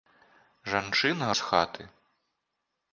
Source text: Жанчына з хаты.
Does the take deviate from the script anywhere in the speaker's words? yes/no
no